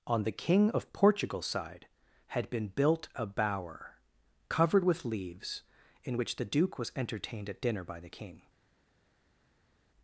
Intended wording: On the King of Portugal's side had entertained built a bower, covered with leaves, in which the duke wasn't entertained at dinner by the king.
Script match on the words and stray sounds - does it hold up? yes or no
no